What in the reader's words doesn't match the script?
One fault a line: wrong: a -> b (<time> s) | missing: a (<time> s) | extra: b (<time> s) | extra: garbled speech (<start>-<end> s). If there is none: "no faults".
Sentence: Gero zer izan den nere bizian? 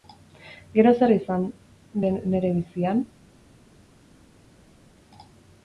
no faults